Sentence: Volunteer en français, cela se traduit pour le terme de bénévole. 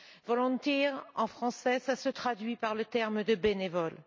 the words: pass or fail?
fail